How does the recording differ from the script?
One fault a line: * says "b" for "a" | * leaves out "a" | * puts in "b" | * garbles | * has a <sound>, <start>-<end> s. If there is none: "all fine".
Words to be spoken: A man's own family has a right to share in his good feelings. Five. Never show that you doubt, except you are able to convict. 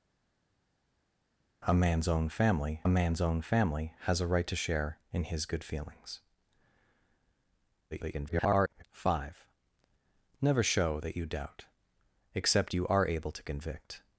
* puts in "man's own family"
* garbles